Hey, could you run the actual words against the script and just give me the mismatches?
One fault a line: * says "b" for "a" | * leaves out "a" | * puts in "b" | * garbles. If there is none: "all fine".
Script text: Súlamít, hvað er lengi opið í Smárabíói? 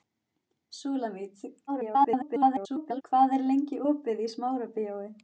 * garbles